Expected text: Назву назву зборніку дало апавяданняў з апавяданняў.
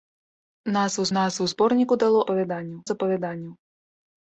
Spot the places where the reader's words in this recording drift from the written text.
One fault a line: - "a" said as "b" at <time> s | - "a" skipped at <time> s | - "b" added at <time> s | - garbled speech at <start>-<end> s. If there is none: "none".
none